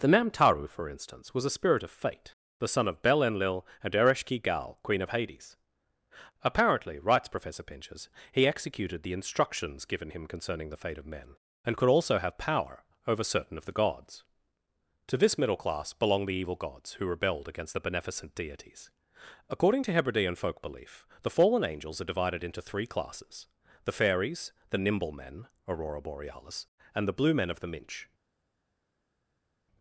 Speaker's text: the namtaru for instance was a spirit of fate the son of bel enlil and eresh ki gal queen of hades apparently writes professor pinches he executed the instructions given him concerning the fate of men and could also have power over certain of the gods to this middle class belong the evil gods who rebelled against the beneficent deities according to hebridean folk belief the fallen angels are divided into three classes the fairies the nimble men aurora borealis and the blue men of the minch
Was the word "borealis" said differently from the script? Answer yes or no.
no